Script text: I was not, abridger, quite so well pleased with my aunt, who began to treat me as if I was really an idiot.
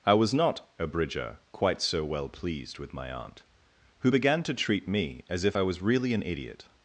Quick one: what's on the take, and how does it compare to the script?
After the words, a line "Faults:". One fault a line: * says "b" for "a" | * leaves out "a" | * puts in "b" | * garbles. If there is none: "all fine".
I was not, abridger, quite so well pleased with my aunt, who began to treat me as if I was really an idiot.
Faults:
all fine